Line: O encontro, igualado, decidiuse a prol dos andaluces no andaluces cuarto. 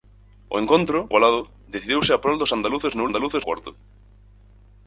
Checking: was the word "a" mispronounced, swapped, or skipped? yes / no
no